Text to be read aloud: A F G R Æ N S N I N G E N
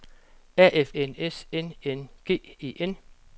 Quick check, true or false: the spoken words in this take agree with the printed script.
false